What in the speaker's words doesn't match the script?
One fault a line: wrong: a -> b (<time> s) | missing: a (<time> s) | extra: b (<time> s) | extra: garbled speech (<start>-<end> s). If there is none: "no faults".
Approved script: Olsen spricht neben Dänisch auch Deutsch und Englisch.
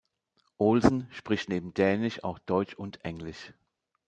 no faults